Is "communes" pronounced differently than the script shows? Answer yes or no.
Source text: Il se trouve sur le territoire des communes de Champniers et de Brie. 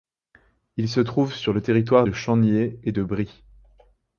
yes